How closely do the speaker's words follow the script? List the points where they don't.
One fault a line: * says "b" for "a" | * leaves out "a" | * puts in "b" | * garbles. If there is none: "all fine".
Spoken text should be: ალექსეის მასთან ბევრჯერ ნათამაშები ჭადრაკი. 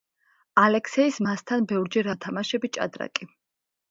all fine